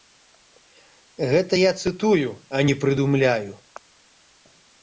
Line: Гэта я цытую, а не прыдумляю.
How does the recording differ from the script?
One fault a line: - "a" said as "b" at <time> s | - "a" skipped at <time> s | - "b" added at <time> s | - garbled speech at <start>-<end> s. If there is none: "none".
none